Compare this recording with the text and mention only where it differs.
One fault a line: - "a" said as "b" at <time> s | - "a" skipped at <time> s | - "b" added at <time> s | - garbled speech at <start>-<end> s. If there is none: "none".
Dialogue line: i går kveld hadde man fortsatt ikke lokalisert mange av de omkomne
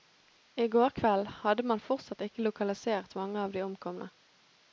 none